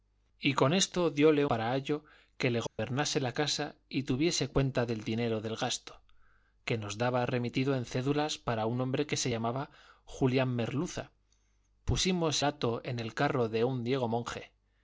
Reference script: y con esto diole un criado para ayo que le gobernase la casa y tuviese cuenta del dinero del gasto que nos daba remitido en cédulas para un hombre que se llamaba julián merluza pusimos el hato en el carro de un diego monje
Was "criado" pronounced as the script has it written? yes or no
no